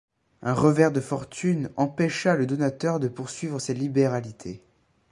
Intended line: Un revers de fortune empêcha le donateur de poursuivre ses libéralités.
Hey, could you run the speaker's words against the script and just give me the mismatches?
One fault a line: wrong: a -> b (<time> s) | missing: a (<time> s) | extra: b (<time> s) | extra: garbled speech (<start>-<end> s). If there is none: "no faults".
no faults